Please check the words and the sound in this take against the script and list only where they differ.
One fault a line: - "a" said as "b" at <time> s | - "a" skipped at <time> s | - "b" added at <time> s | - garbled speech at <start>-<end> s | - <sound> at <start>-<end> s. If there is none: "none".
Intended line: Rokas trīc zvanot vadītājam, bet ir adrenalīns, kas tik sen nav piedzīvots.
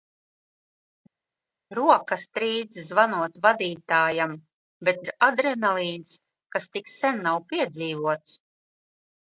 none